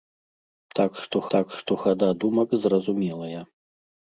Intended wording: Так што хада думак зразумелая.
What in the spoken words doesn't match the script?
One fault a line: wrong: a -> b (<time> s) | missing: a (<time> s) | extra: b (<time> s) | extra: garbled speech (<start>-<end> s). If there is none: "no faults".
extra: так што (1.3 s)